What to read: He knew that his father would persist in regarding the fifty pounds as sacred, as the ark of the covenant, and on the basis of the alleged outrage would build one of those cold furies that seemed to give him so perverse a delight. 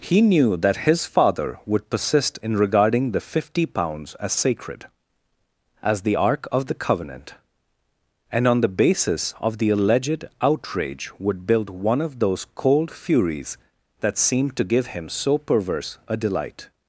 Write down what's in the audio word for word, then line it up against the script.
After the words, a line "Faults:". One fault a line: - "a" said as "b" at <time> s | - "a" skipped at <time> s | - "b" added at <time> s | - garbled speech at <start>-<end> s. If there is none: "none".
He knew that his father would persist in regarding the fifty pounds as sacred, as the ark of the covenant, and on the basis of the alleged outrage would build one of those cold furies that seemed to give him so perverse a delight.
Faults:
none